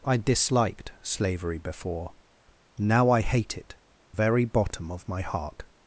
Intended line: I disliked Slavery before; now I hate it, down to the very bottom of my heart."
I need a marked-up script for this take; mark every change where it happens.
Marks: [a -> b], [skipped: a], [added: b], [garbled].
I disliked Slavery before; now I hate it, [skipped: down to the] very bottom of my heart."